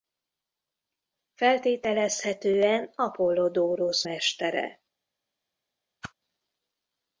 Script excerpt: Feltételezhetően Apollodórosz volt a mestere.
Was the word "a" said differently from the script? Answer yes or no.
yes